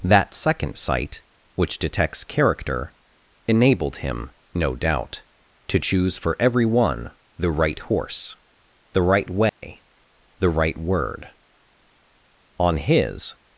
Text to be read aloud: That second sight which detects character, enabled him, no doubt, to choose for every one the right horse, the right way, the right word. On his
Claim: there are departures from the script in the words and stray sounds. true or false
true